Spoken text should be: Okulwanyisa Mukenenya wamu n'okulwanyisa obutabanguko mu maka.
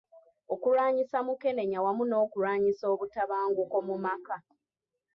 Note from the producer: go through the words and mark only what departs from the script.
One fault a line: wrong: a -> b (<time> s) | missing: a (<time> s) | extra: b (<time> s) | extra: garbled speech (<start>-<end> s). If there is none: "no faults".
no faults